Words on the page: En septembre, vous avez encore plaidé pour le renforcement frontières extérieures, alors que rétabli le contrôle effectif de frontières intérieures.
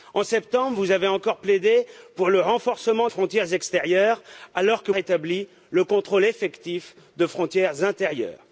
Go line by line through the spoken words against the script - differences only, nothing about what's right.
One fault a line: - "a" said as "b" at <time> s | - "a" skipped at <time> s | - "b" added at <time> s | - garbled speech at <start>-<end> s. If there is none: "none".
none